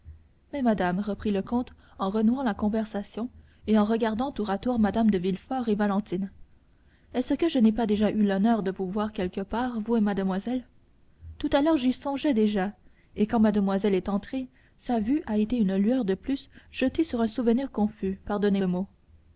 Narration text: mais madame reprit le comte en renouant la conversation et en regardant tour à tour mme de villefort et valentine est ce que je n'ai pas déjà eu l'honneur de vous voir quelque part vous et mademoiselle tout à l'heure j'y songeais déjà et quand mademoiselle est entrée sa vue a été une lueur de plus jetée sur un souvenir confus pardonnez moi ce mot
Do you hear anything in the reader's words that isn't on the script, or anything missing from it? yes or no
yes